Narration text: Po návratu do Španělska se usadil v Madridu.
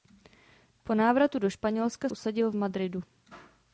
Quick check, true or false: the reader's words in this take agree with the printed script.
false